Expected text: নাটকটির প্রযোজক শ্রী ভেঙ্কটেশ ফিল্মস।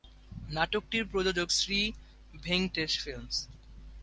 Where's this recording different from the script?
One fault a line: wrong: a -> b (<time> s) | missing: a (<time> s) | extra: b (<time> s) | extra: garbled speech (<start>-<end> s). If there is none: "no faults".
no faults